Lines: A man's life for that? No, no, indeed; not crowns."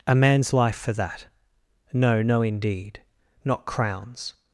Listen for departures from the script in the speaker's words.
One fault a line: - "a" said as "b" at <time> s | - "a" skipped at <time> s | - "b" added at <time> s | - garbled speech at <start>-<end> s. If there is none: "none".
none